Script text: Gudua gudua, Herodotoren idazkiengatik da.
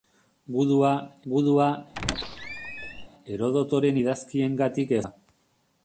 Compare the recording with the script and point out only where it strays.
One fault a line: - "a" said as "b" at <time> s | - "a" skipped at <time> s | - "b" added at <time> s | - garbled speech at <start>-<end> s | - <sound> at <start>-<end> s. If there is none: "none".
- squeak at 1.9-3.1 s